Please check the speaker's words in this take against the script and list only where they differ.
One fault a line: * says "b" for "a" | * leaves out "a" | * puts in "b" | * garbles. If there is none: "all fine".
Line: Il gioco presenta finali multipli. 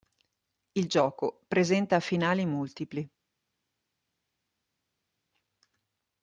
all fine